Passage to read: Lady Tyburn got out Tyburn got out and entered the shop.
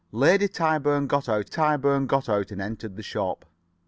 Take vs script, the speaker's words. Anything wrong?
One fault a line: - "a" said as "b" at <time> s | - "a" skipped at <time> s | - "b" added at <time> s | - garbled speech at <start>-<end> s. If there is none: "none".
none